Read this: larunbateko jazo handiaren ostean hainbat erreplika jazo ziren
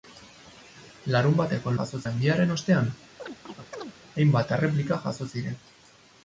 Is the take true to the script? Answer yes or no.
yes